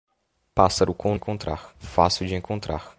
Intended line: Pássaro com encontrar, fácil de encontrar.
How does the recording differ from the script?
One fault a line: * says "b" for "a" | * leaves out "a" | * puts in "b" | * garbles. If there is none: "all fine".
all fine